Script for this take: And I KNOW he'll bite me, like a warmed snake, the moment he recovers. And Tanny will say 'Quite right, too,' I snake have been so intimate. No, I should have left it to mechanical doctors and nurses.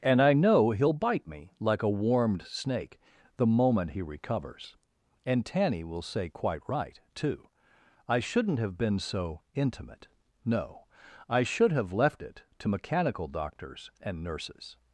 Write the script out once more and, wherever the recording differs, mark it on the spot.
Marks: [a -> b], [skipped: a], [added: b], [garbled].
And I KNOW he'll bite me, like a warmed snake, the moment he recovers. And Tanny will say 'Quite right, too,' I [snake -> shouldn't] have been so intimate. No, I should have left it to mechanical doctors and nurses.